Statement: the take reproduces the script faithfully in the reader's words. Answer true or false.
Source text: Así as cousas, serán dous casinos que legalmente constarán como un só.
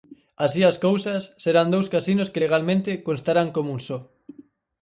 true